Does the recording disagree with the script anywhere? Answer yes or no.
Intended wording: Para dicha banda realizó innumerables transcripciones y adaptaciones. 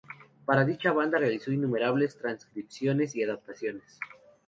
no